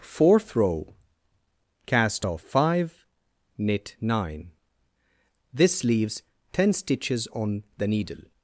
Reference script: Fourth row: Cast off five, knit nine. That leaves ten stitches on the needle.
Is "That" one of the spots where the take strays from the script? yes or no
yes